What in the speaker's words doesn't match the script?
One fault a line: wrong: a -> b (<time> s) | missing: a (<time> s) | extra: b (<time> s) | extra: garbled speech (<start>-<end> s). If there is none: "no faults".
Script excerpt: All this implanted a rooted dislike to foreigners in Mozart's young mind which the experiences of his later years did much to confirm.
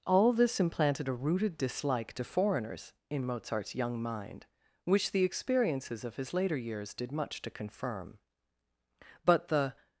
extra: But the (9.2 s)